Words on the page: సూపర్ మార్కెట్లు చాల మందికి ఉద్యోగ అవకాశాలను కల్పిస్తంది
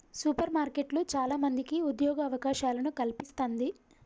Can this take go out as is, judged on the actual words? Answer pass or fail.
pass